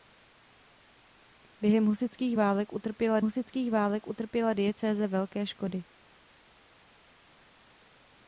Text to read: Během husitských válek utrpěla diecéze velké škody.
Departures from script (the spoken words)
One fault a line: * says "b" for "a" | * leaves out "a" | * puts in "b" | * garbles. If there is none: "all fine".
* puts in "husitských válek utrpěla"